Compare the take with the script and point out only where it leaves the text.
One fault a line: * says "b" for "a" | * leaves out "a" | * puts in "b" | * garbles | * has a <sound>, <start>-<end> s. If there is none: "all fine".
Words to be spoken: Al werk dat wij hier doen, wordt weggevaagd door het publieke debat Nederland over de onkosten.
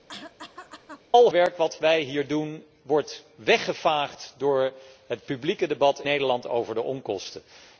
* has a cough, 0.1-1.0 s